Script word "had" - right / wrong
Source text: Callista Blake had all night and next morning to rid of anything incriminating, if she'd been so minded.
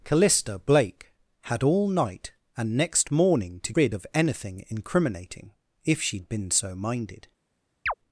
right